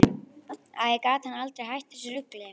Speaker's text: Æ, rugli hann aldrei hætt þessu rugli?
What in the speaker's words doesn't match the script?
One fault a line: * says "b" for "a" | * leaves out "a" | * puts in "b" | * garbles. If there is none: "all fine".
* says "gat" for "rugli"